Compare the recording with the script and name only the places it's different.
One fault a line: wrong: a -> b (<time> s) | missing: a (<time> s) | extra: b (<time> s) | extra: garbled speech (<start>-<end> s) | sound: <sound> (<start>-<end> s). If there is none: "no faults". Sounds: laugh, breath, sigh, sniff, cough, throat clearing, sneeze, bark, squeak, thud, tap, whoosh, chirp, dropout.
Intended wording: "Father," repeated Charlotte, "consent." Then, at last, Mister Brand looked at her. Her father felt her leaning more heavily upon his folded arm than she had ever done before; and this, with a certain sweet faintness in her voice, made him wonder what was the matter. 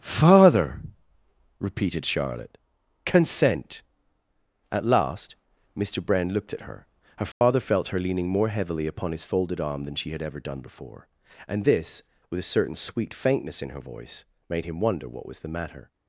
missing: Then (3.8 s)
sound: dropout (7.3-7.4 s)